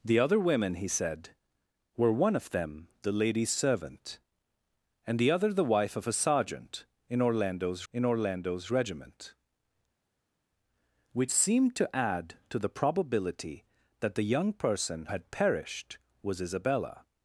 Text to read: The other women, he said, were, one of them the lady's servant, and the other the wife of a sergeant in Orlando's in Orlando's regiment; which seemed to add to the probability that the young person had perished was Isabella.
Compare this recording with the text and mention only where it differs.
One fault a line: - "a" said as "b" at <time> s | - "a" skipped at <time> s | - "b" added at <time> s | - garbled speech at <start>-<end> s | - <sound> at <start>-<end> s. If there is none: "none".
none